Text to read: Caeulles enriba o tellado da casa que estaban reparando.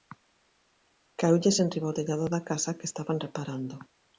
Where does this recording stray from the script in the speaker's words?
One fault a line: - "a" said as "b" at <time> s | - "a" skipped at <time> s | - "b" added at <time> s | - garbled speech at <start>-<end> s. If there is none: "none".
none